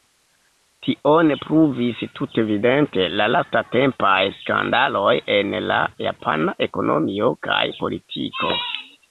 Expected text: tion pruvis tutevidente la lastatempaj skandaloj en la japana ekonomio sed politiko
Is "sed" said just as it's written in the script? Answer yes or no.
no